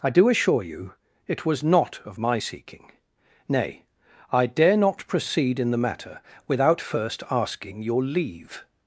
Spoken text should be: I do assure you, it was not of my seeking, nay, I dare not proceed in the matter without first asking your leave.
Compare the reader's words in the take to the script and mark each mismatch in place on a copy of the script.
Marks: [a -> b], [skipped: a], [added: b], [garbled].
I do assure you, it was not of my seeking, nay, I dare not proceed in the matter without first asking your leave.